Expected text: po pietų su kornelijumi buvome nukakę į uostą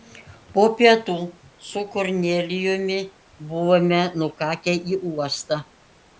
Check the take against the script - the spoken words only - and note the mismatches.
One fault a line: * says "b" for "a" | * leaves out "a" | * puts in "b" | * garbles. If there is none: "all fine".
all fine